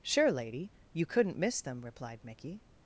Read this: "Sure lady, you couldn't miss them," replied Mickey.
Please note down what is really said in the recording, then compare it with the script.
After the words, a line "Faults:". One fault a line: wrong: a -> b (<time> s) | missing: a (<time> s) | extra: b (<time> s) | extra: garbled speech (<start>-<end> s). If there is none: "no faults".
"Sure lady, you couldn't miss them," replied Mickey.
Faults:
no faults